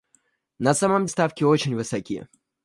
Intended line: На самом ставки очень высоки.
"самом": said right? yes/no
yes